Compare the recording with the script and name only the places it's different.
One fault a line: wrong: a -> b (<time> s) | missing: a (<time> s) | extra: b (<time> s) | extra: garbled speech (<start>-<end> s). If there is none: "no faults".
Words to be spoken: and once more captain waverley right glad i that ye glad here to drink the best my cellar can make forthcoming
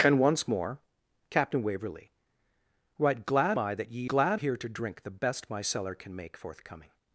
no faults